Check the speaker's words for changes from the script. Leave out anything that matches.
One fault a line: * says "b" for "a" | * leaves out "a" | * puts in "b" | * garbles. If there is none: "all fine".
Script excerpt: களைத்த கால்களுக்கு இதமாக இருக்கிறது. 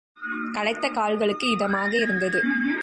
* says "இருந்தது" for "இருக்கிறது"